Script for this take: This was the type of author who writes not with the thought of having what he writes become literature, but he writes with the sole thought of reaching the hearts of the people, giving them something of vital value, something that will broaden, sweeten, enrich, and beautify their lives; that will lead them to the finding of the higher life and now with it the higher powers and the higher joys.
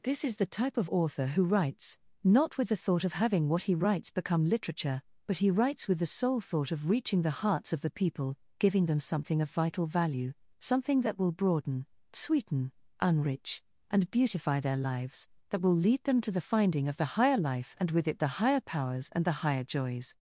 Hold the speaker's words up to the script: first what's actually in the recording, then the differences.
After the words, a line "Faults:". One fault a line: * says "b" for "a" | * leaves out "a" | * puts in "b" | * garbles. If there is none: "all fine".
This is the type of author who writes not with the thought of having what he writes become literature, but he writes with the sole thought of reaching the hearts of the people, giving them something of vital value, something that will broaden, sweeten, enrich, and beautify their lives; that will lead them to the finding of the higher life and with it the higher powers and the higher joys.
Faults:
* says "is" for "was"
* leaves out "now"